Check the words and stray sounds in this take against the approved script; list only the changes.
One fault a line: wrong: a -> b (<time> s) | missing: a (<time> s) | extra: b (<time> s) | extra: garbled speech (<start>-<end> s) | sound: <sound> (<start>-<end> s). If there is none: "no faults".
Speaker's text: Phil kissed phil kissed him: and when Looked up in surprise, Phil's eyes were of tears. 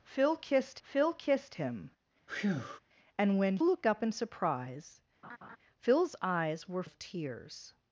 sound: breath (2.3-2.8 s)
sound: laugh (5.2-5.6 s)